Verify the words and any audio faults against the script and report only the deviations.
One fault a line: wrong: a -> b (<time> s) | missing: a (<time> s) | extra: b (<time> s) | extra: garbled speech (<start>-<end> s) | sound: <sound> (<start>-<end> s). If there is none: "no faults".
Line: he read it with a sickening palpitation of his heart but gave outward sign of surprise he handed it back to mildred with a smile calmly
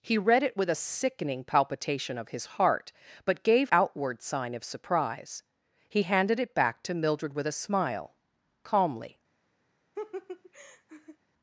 sound: laugh (10.0-11.2 s)